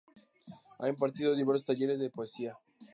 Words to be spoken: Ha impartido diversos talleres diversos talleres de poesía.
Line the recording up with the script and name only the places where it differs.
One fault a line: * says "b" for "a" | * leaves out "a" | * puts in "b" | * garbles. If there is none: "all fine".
* leaves out "diversos talleres"